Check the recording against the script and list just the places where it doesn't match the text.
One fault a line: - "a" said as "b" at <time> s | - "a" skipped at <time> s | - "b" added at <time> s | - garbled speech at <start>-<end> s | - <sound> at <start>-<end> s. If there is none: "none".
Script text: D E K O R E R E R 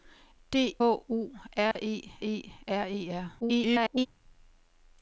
- "E K" skipped at 0.8 s
- dropout at 1.7-1.8 s
- "E" added at 2.2 s
- garbled speech at 3.4-4.1 s